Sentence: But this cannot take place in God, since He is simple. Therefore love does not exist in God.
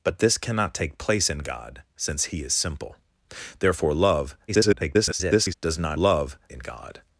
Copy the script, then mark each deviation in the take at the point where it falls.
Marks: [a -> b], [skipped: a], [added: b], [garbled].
But this cannot take place in God, since He is simple. Therefore love [garbled] does not [exist -> love] in God.